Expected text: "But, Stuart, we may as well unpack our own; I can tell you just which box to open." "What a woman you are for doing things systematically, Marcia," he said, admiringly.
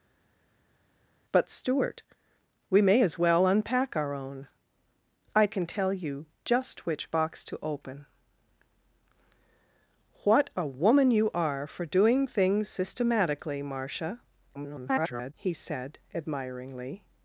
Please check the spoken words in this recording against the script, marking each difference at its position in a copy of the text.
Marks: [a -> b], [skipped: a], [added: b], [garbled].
"But, Stuart, we may as well unpack our own; I can tell you just which box to open." "What a woman you are for doing things systematically, Marcia," [garbled] he said, admiringly.